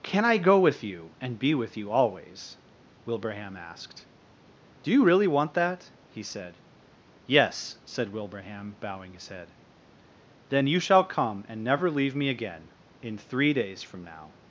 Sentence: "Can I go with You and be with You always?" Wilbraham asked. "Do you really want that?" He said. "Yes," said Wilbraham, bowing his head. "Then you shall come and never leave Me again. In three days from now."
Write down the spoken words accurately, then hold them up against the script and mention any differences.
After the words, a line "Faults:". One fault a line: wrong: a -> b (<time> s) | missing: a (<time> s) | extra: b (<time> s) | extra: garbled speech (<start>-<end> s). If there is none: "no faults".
"Can I go with You and be with You always?" Wilbraham asked. "Do you really want that?" He said. "Yes," said Wilbraham, bowing his head. "Then you shall come and never leave Me again. In three days from now."
Faults:
no faults